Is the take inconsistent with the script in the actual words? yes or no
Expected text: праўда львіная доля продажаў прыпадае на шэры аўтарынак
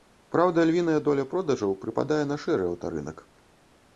no